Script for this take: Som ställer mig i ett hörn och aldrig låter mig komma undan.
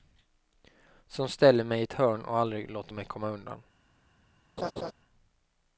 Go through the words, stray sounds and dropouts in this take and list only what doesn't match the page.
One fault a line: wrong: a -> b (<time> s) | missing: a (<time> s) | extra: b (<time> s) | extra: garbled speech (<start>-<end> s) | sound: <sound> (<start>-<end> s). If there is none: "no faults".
sound: laugh (4.6-4.9 s)